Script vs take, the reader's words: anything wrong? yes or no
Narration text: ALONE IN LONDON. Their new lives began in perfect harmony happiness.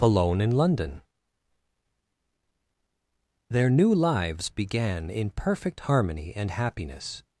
yes